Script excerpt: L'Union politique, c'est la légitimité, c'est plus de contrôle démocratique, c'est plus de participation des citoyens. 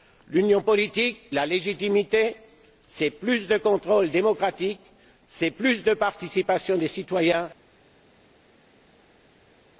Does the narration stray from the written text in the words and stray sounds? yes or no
yes